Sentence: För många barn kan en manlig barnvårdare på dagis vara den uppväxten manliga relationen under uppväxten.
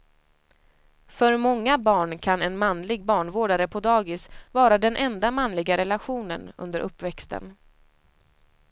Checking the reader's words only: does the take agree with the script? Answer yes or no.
no